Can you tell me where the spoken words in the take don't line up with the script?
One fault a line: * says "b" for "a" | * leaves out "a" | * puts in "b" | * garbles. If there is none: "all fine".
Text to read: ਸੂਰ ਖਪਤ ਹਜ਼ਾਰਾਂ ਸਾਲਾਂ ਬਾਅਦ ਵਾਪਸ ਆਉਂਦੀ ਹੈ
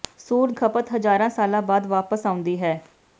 all fine